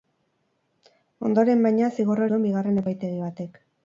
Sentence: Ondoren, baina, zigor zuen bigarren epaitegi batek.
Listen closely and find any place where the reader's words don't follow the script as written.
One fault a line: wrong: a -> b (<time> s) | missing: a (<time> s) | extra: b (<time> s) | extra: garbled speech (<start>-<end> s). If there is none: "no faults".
no faults